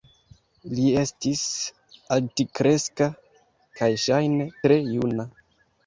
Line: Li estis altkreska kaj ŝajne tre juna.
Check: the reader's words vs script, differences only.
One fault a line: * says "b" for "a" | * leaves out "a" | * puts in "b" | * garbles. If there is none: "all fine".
all fine